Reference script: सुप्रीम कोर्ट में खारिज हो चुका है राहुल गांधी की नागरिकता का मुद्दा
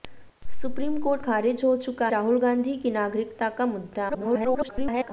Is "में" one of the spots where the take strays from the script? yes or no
yes